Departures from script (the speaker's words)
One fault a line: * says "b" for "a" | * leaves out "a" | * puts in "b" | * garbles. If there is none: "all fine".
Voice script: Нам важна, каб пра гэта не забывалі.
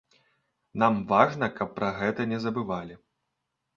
all fine